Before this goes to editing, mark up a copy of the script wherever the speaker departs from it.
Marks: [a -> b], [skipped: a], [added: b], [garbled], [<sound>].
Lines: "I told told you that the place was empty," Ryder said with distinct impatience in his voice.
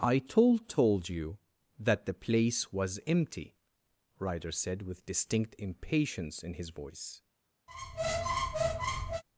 "I told told you that the place was empty," Ryder said with distinct impatience in his voice. [squeak]